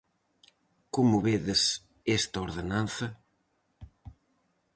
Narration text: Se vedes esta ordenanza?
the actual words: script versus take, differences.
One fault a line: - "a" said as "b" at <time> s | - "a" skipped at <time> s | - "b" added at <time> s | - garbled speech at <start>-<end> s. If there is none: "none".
- "Se" said as "Como" at 0.9 s